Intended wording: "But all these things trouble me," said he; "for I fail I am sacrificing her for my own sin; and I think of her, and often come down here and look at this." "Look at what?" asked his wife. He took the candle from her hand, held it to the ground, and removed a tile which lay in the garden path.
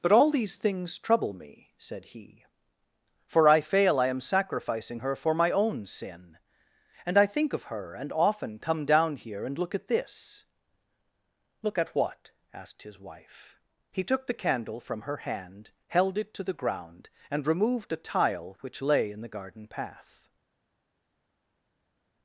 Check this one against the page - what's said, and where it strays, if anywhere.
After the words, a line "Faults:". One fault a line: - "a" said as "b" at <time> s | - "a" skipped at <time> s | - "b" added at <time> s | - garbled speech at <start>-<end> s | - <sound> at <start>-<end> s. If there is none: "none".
"But all these things trouble me," said he; "for I fail I am sacrificing her for my own sin; and I think of her, and often come down here and look at this." "Look at what?" asked his wife. He took the candle from her hand, held it to the ground, and removed a tile which lay in the garden path.
Faults:
none